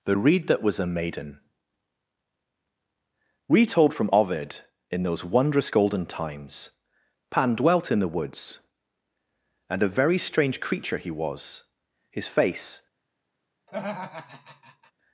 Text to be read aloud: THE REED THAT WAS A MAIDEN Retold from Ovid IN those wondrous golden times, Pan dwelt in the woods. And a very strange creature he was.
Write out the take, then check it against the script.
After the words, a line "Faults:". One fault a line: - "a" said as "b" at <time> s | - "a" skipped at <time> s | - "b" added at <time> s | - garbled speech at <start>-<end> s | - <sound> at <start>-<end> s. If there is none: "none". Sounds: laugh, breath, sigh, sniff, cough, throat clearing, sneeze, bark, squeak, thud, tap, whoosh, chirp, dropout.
THE REED THAT WAS A MAIDEN Retold from Ovid IN those wondrous golden times, Pan dwelt in the woods. And a very strange creature he was. His face
Faults:
- "His face" added at 12.1 s
- laugh at 13.7-14.9 s